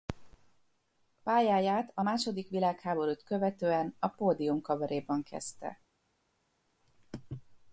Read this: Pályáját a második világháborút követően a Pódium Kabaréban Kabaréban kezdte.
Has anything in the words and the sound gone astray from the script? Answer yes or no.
yes